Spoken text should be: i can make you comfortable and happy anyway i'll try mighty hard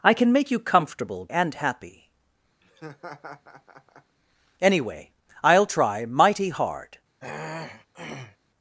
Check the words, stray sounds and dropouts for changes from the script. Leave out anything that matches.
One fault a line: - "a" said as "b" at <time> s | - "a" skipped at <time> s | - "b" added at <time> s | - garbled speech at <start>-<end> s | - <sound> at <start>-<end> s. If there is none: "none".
- laugh at 2.6-4.2 s
- throat clearing at 7.2-8.4 s